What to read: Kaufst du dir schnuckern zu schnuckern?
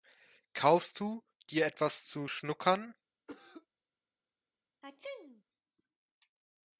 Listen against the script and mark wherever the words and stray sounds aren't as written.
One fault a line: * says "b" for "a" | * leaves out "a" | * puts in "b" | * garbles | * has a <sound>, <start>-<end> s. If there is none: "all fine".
* says "etwas" for "schnuckern"
* has a cough, 3.3-3.7 s
* has a sneeze, 4.8-5.4 s